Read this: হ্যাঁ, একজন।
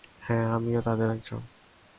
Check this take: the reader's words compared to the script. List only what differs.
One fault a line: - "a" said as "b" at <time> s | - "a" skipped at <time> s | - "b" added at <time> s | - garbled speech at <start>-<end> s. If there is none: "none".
- "আমিও তাদের" added at 0.5 s